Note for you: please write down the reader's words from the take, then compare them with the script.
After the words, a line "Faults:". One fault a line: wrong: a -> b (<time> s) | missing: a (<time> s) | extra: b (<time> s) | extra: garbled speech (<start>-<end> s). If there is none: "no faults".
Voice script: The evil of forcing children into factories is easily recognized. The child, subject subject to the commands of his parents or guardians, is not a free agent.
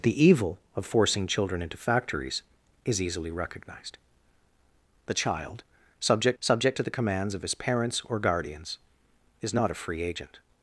The evil of forcing children into factories is easily recognized. The child, subject subject to the commands of his parents or guardians, is not a free agent.
Faults:
no faults